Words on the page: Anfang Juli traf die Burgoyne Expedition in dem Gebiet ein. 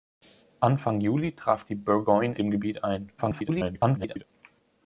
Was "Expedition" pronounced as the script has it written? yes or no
no